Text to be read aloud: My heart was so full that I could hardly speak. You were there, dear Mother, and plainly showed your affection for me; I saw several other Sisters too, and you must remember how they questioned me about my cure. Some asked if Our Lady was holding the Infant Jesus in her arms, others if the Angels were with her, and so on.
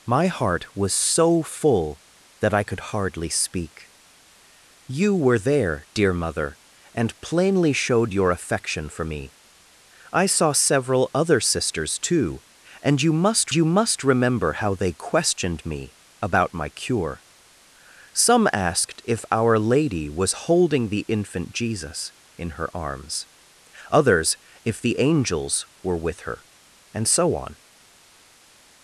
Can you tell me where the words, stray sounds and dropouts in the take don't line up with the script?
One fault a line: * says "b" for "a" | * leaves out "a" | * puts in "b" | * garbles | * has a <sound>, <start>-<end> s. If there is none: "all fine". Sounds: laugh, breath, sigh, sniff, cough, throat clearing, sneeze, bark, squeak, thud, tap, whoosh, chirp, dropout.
* puts in "you must"